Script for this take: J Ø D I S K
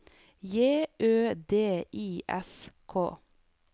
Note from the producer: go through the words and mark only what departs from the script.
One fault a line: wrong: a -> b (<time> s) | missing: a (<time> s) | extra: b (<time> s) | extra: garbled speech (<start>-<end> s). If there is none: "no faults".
no faults